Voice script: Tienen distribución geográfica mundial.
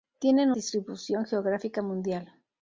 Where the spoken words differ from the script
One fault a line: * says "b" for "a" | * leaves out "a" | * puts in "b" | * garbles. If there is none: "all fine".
all fine